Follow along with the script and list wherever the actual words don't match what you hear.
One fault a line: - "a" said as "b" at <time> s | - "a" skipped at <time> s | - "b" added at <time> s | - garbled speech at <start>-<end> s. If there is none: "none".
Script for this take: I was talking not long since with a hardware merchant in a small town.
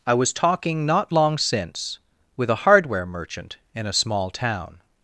none